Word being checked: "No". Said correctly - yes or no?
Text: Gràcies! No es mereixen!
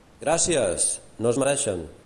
yes